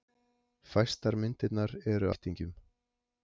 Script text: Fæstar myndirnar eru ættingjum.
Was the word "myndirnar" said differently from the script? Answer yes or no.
no